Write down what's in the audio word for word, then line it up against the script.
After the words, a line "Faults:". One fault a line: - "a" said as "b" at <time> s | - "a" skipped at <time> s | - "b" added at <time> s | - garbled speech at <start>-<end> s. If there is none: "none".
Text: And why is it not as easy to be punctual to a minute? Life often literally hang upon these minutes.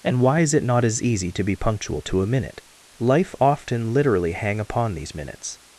And why is it not as easy to be punctual to a minute? Life often literally hang upon these minutes.
Faults:
none